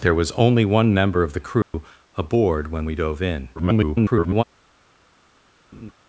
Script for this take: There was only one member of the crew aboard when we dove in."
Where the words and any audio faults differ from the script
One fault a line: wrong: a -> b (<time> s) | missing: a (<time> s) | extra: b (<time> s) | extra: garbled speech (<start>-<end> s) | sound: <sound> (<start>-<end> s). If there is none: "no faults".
sound: dropout (1.6-1.7 s)
extra: garbled speech (3.6-4.4 s)
sound: laugh (5.7-5.9 s)